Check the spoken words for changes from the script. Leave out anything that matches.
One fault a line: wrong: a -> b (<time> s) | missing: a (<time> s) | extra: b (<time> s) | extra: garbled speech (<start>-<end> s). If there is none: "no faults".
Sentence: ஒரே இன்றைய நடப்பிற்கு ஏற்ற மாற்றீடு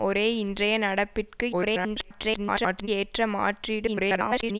extra: garbled speech (1.5-2.9 s)
extra: garbled speech (3.9-4.6 s)